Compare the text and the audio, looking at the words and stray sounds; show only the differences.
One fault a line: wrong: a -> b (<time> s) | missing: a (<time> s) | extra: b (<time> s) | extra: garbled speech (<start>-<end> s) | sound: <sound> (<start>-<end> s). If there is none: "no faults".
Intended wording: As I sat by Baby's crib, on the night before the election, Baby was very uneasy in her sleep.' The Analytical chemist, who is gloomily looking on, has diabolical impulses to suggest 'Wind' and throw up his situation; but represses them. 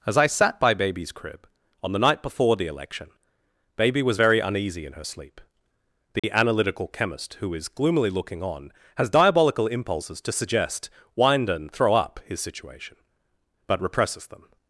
sound: dropout (6.2-6.2 s)